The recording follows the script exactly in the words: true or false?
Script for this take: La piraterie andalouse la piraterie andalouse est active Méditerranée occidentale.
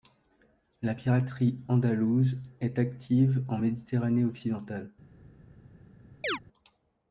false